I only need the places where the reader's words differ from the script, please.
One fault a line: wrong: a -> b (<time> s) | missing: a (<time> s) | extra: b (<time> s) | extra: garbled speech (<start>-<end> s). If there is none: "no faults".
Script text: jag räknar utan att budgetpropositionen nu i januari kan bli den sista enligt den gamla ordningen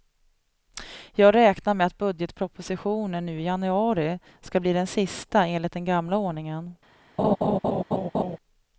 wrong: utan -> med (1.7 s)
wrong: kan -> ska (4.4 s)